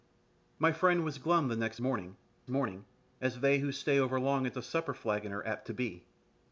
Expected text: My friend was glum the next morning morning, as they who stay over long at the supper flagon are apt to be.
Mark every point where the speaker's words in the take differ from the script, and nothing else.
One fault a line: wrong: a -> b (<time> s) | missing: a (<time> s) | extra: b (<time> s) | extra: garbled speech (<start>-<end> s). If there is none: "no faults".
no faults